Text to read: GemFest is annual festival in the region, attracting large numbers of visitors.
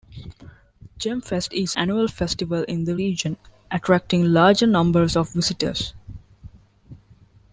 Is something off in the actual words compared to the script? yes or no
no